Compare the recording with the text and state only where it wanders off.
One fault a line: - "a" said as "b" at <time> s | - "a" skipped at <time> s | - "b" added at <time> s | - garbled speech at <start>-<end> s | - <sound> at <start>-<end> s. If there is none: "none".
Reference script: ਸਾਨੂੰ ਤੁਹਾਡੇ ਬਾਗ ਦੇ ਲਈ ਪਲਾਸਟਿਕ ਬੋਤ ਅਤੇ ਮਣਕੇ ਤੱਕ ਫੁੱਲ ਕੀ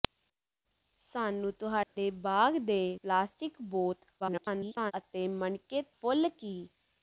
- dropout at 1.8-2.0 s
- "ਲਈ" skipped at 2.8 s
- garbled speech at 4.2-4.9 s
- "ਤੱਕ" skipped at 5.8 s